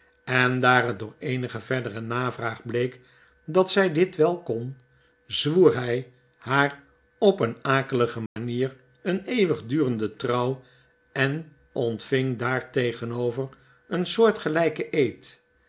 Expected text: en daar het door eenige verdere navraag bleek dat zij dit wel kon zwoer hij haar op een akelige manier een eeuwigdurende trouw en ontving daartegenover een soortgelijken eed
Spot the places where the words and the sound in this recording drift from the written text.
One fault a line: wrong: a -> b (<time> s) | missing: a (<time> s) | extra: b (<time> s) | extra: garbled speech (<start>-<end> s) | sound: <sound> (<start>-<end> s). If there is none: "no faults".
sound: dropout (8.3-8.4 s)